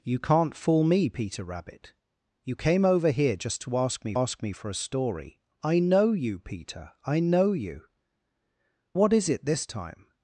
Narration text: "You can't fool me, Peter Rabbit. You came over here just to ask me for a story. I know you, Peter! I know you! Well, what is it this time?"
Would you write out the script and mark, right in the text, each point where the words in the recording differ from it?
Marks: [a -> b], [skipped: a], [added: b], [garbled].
"You can't fool me, Peter Rabbit. You came over here just to ask me [added: ask me] for a story. I know you, Peter! I know you! [skipped: Well,] what is it this time?"